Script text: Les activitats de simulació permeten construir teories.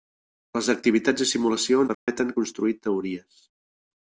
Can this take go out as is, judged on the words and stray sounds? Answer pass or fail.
fail